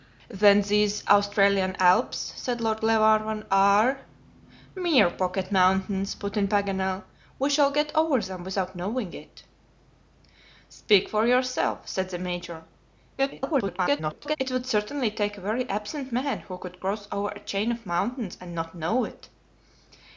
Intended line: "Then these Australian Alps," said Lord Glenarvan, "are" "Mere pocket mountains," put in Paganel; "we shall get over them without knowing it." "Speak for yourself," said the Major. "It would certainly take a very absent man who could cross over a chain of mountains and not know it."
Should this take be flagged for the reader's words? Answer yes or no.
yes